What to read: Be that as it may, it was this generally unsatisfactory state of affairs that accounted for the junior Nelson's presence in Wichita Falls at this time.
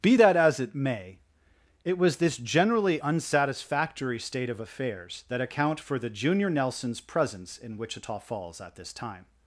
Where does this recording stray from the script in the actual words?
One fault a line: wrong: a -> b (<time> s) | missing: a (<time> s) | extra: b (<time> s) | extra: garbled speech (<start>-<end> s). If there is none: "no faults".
wrong: accounted -> account (5.4 s)